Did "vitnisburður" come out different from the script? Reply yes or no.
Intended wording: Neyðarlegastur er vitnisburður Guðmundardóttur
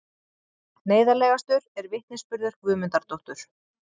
no